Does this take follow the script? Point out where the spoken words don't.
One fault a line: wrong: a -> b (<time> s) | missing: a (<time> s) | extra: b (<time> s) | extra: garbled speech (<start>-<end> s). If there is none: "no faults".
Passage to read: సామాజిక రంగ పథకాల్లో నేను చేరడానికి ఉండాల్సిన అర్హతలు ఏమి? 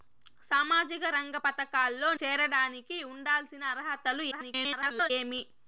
missing: నేను (2.1 s)
extra: garbled speech (4.3-5.1 s)